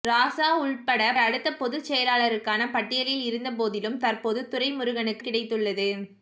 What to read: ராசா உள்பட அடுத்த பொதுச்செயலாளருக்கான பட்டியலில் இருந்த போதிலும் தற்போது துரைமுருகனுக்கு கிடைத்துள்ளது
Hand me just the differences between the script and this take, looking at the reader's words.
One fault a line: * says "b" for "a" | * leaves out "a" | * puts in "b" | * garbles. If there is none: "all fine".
all fine